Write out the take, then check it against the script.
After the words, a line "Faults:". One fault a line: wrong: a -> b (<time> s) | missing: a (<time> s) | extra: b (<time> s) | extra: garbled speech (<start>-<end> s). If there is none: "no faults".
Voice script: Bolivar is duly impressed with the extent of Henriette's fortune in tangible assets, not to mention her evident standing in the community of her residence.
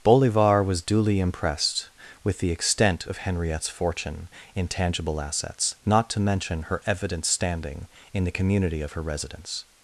Bolivar was duly impressed with the extent of Henriette's fortune in tangible assets, not to mention her evident standing in the community of her residence.
Faults:
wrong: is -> was (0.6 s)